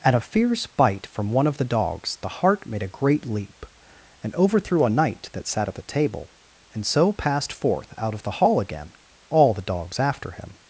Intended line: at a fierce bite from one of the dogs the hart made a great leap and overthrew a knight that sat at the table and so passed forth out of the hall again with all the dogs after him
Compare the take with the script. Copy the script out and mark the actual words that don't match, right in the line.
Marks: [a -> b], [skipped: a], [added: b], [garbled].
at a fierce bite from one of the dogs the hart made a great leap and overthrew a knight that sat at the table and so passed forth out of the hall again [skipped: with] all the dogs after him